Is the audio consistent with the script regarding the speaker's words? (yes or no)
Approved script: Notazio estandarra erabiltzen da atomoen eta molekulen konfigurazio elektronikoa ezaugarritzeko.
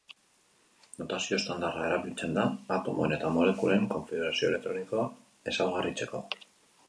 yes